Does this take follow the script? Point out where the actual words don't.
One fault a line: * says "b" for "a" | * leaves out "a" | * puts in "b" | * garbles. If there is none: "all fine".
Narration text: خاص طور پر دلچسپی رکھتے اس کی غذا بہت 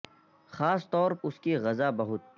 * leaves out "پر دلچسپی رکھتے"